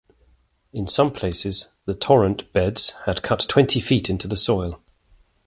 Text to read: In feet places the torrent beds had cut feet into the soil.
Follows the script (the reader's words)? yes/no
no